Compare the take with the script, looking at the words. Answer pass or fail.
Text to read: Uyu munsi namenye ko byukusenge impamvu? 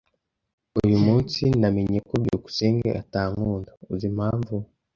fail